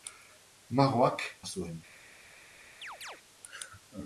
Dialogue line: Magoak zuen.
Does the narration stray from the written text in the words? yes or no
no